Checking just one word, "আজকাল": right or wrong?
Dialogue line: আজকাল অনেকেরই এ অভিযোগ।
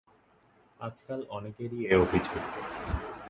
right